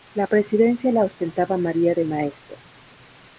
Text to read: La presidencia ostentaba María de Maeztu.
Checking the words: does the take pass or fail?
fail